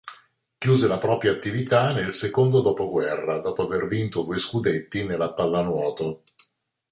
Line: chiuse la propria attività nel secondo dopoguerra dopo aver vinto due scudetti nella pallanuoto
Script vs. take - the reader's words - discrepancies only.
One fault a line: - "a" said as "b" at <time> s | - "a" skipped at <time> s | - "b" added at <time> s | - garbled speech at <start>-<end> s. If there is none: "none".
none